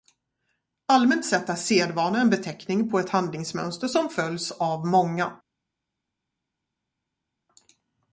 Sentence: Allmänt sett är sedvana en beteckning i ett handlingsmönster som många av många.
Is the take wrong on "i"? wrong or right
wrong